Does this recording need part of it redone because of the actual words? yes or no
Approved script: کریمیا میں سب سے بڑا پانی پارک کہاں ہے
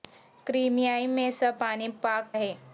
yes